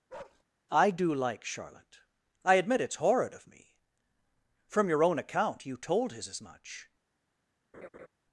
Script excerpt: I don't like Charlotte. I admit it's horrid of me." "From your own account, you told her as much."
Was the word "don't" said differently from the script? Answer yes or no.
yes